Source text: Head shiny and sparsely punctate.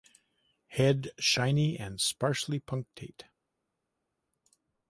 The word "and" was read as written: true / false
true